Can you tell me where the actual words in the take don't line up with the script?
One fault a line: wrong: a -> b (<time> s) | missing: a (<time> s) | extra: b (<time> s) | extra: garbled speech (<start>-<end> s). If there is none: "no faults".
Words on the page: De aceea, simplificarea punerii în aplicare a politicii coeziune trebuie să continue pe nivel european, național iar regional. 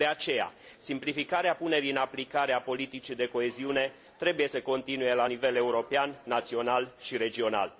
extra: de (3.1 s)
wrong: pe -> la (5.1 s)
wrong: iar -> și (7.0 s)